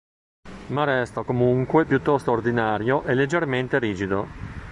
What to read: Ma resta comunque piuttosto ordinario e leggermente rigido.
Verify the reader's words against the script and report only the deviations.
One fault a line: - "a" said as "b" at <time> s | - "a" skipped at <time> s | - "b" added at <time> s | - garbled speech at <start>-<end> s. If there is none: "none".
none